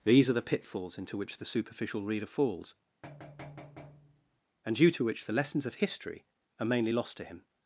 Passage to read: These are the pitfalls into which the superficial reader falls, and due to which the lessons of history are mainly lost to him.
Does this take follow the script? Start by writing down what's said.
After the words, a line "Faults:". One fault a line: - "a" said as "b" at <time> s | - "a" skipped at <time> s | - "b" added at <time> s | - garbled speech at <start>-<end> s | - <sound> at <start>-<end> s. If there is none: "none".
These are the pitfalls into which the superficial reader falls, and due to which the lessons of history are mainly lost to him.
Faults:
- thud at 3.0-4.4 s